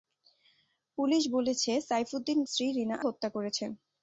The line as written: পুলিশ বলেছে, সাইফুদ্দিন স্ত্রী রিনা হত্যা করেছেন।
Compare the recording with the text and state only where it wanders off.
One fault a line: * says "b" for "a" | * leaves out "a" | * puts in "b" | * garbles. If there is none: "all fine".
all fine